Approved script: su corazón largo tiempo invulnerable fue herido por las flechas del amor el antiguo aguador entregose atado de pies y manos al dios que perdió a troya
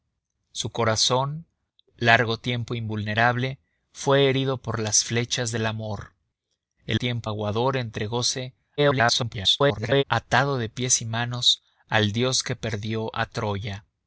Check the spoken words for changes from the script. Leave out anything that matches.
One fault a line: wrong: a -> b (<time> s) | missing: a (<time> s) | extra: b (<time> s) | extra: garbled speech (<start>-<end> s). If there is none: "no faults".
wrong: antiguo -> tiempo (7.0 s)
extra: garbled speech (8.8-10.0 s)